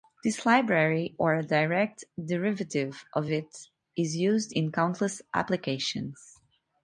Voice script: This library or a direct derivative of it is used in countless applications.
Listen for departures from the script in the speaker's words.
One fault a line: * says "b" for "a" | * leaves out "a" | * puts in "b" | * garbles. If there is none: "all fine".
all fine